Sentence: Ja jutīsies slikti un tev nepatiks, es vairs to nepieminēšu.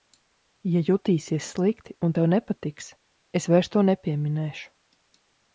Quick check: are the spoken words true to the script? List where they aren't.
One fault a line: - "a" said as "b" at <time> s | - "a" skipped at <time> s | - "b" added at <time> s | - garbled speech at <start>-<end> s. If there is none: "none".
none